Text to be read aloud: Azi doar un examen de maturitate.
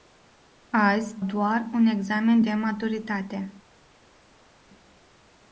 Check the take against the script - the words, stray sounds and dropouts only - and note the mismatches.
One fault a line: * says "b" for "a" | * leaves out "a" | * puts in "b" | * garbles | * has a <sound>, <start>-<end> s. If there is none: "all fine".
all fine